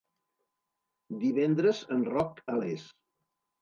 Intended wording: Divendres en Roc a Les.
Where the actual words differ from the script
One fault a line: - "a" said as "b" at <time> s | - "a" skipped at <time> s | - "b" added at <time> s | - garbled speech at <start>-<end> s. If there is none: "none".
none